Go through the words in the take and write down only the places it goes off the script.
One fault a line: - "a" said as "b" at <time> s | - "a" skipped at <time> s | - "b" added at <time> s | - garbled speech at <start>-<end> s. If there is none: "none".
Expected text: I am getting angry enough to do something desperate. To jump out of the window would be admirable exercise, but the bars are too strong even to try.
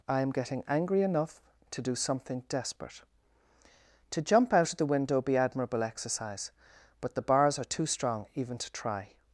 - "would" skipped at 5.2 s